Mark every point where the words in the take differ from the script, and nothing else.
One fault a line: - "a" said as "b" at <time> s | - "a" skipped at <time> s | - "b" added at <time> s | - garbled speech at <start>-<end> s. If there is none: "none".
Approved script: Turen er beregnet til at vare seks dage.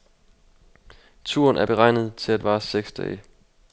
none